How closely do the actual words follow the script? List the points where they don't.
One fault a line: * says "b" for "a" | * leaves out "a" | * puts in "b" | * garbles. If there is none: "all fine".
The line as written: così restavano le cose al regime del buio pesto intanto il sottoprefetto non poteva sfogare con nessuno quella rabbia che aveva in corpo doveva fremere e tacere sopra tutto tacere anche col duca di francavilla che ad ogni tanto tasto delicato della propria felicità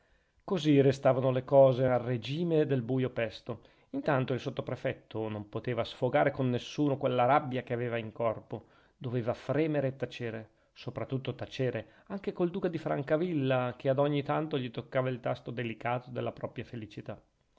* puts in "gli toccava il"